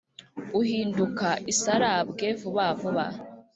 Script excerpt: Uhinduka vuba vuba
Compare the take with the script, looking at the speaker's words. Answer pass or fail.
fail